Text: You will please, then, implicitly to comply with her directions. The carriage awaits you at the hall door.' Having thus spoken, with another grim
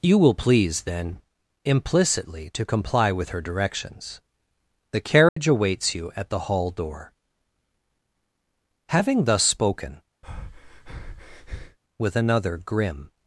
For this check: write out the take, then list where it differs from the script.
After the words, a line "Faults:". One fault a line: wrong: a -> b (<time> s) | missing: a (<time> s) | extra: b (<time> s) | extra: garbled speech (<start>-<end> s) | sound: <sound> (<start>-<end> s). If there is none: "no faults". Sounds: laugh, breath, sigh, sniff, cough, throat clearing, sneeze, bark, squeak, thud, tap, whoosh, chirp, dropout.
You will please, then, implicitly to comply with her directions. The carriage awaits you at the hall door.' Having thus spoken, with another grim
Faults:
sound: dropout (5.3-5.4 s)
sound: breath (10.2-11.8 s)